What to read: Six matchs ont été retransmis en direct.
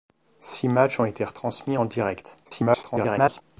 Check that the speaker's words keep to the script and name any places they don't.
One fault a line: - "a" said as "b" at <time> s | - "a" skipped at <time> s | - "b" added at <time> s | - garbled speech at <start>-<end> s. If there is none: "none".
- garbled speech at 2.4-3.4 s